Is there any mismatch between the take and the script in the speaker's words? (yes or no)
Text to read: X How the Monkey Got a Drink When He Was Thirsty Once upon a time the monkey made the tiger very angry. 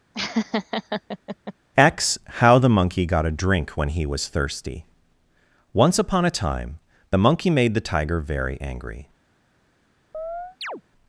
no